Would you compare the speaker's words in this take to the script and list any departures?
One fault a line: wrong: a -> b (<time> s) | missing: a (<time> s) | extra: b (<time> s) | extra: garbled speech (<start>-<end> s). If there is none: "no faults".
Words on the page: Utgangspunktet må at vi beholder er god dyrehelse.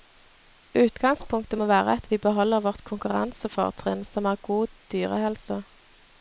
extra: være (1.7 s)
extra: vårt konkurransefortrinn som (2.7 s)